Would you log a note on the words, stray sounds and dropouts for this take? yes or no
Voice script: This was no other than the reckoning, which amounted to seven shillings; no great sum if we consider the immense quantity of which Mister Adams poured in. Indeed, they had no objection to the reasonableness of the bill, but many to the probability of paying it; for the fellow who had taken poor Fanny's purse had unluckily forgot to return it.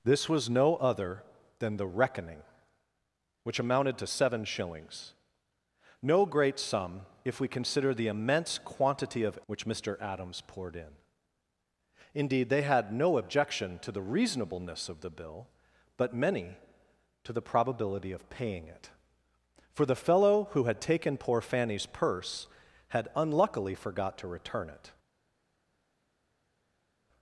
no